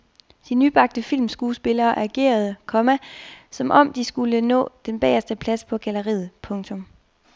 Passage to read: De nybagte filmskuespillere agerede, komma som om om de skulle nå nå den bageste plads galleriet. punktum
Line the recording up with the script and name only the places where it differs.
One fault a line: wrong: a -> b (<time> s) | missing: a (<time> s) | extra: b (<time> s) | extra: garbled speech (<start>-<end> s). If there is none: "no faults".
missing: om (3.9 s)
missing: nå (4.7 s)
extra: på (5.6 s)